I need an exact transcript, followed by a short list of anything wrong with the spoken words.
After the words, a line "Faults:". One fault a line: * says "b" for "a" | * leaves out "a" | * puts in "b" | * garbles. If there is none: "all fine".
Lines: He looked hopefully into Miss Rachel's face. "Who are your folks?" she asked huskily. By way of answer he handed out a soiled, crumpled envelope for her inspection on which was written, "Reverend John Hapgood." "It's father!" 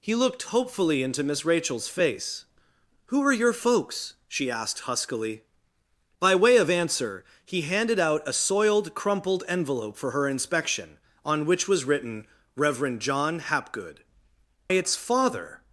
He looked hopefully into Miss Rachel's face. "Who are your folks?" she asked huskily. By way of answer he handed out a soiled, crumpled envelope for her inspection on which was written, "Reverend John Hapgood." "It's father!"
Faults:
all fine